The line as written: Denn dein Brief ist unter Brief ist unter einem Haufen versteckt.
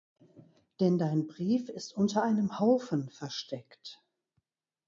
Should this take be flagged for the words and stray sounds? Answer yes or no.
yes